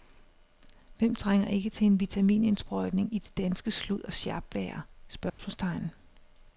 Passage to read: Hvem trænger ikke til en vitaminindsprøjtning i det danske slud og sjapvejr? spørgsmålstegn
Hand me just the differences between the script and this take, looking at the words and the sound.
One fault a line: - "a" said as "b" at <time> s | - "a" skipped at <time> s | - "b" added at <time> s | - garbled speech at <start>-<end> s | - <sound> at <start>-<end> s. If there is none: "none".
- dropout at 5.3-5.4 s